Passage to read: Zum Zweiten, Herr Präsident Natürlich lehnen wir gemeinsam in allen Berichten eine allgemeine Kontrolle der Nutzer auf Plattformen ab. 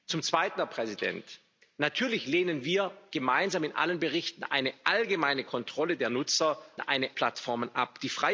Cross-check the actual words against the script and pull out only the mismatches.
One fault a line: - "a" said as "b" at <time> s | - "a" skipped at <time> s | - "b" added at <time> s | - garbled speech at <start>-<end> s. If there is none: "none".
- "auf" said as "eine" at 6.8 s